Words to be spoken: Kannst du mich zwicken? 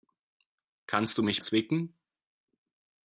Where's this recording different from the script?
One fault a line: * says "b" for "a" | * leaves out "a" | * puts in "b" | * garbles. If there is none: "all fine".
all fine